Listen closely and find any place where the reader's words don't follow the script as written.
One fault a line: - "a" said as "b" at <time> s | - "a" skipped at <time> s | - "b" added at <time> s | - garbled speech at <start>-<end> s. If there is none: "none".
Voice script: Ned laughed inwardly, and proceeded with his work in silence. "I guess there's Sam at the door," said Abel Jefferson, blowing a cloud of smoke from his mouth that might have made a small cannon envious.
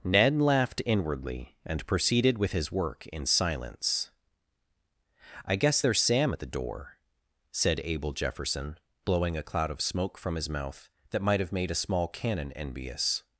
none